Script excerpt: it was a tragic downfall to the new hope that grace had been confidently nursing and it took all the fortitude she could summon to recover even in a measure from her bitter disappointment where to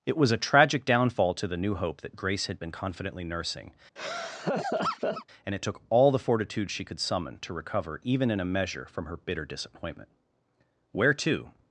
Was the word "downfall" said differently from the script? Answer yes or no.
no